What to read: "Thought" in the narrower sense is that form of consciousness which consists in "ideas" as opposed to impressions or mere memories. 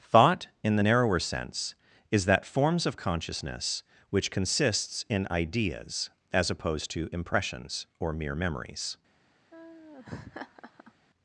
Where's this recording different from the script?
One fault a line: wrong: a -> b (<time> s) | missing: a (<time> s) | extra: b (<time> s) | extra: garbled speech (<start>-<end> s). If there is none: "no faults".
wrong: form -> forms (2.4 s)